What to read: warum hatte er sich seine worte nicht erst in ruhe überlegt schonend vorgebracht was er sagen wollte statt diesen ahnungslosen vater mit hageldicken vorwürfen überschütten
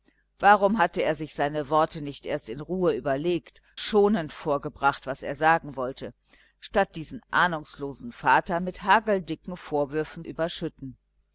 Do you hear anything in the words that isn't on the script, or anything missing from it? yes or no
no